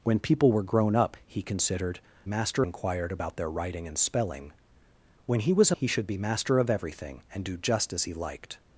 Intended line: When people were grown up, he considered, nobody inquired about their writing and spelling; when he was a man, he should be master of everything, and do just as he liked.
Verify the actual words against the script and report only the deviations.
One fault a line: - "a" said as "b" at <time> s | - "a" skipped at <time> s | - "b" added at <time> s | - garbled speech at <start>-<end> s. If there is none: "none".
- "nobody" said as "master" at 2.3 s
- "man" skipped at 5.8 s